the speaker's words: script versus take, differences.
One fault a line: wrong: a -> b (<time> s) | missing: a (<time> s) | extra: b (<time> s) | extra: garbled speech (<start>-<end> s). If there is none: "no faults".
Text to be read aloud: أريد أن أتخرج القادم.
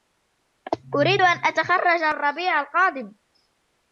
extra: الربيع (2.0 s)